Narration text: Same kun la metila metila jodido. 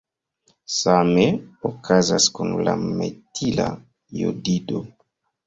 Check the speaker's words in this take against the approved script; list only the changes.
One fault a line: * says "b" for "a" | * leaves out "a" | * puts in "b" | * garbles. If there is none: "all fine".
* puts in "okazas"
* leaves out "metila"